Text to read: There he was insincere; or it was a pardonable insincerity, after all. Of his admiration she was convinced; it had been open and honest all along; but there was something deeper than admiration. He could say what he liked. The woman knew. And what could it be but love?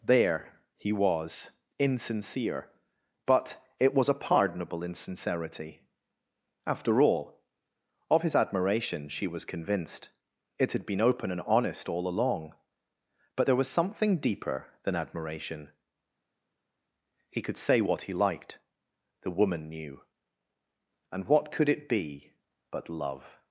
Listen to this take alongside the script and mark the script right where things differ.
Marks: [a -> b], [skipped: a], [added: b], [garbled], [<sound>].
There he was insincere; [or -> but] it was a pardonable insincerity, after all. Of his admiration she was convinced; it had been open and honest all along; but there was something deeper than admiration. He could say what he liked. The woman knew. And what could it be but love?